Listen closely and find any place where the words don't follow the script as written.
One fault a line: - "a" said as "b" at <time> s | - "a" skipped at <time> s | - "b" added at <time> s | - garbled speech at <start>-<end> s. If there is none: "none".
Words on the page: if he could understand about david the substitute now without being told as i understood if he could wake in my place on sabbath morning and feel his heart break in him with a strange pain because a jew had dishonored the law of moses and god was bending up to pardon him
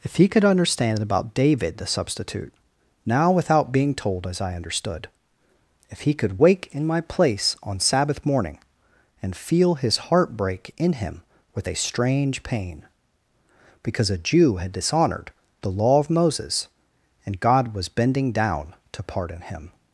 - "up" said as "down" at 18.3 s